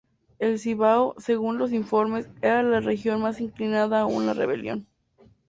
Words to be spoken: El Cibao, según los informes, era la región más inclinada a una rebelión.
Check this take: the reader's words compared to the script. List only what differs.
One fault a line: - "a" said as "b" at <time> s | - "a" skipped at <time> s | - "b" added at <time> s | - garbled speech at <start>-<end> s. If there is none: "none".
none